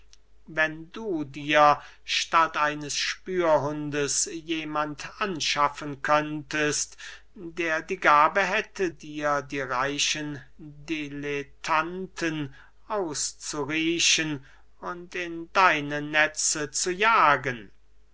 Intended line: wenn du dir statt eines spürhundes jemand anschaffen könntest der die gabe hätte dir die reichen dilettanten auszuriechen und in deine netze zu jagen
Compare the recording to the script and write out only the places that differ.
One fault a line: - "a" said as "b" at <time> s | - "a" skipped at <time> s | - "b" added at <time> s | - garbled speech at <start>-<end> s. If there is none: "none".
none